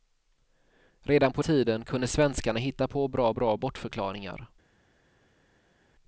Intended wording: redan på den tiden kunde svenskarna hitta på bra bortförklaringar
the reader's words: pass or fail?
fail